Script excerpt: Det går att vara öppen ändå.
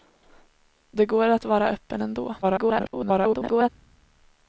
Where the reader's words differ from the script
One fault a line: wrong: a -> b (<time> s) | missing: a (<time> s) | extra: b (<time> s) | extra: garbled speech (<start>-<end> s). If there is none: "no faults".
extra: garbled speech (2.4-3.7 s)